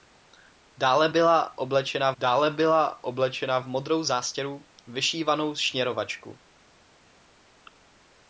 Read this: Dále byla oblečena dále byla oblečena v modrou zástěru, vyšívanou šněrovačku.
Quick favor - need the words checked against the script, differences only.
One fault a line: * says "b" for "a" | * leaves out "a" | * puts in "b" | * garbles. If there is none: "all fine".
all fine